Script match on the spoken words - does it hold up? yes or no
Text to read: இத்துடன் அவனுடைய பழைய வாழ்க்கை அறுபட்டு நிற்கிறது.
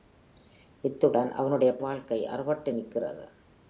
no